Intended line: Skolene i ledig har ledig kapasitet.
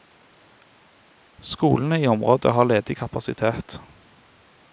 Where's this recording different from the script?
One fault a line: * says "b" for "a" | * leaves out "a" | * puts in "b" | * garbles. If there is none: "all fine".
* says "området" for "ledig"